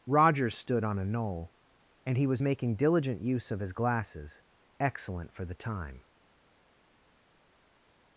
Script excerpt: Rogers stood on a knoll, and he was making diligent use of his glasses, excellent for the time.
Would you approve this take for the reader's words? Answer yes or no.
yes